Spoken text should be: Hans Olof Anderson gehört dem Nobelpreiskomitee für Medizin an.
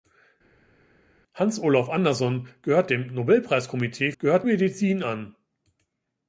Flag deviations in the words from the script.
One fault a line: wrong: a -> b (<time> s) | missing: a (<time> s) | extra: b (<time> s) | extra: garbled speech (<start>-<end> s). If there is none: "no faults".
wrong: für -> gehört (4.2 s)